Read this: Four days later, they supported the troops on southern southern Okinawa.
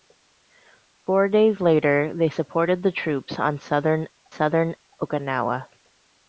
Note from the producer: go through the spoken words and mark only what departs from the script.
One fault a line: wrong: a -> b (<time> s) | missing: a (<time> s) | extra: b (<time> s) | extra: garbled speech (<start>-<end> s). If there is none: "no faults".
no faults